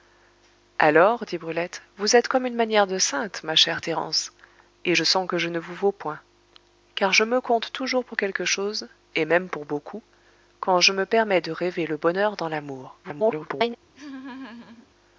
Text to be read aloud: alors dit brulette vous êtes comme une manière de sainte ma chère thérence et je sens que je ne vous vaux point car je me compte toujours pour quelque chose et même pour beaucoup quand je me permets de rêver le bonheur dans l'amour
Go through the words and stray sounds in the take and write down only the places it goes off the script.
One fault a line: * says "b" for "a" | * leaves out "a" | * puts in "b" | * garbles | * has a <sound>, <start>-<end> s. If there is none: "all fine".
* garbles
* has a laugh, 14.0-14.9 s